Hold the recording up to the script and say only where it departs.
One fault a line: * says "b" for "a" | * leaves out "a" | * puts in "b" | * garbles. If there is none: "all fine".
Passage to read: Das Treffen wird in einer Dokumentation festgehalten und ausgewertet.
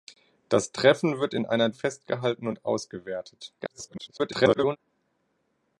* leaves out "Dokumentation"
* garbles